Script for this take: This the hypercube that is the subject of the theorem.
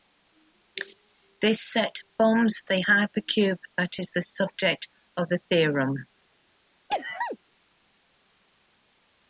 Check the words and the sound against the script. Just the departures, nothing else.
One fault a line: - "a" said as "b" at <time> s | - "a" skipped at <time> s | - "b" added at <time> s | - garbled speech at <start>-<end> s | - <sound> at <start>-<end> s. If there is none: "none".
- "set forms" added at 1.6 s
- sneeze at 6.9-7.4 s